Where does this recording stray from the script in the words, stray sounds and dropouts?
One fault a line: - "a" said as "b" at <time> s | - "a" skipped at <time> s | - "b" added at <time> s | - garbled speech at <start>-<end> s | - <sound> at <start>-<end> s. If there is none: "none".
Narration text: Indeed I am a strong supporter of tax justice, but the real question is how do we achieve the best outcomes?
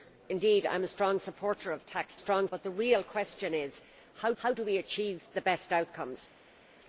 - "justice" said as "strong" at 2.2 s
- "how" added at 4.4 s